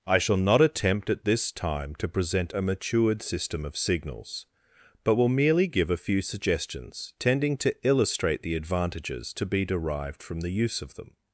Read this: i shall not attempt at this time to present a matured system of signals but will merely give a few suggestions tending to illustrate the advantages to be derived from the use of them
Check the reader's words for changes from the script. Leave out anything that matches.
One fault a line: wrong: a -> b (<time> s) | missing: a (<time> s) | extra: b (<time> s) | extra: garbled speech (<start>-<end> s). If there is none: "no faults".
no faults